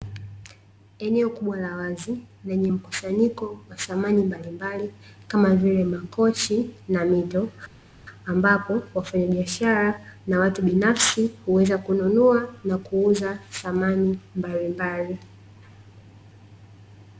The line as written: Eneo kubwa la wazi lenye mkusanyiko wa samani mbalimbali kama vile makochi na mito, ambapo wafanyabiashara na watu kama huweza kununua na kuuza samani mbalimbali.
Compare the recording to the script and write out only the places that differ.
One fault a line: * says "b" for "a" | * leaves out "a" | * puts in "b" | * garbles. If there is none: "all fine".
* says "binafsi" for "kama"